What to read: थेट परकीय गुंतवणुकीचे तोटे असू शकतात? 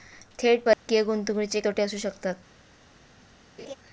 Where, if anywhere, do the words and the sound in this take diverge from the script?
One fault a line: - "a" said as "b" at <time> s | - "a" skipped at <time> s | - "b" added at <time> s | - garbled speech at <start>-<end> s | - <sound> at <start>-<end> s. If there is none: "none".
- dropout at 0.7-0.9 s
- laugh at 3.6-3.8 s